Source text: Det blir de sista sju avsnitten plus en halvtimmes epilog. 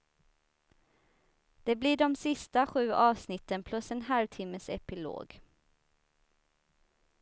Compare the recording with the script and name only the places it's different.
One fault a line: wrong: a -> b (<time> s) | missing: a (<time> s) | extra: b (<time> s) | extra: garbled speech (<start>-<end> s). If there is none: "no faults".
no faults